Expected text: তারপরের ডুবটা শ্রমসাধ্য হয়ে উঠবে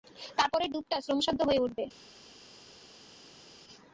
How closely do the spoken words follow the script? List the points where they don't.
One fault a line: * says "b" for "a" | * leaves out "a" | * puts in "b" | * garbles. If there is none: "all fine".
all fine